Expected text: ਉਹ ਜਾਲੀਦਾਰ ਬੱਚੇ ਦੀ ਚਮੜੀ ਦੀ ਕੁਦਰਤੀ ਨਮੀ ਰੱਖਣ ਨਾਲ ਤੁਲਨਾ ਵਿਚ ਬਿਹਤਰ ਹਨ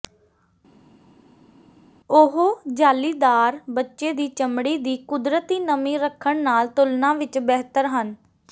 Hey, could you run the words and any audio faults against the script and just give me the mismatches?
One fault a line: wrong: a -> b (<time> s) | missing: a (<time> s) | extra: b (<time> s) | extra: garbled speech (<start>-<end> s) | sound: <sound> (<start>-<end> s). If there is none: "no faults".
no faults